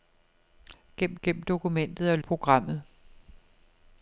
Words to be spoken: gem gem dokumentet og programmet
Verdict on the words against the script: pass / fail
pass